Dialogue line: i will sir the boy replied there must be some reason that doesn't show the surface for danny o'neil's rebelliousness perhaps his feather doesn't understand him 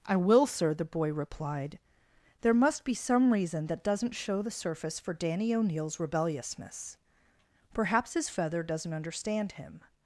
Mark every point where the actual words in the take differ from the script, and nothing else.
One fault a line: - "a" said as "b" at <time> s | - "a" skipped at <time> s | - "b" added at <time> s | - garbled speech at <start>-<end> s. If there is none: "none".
none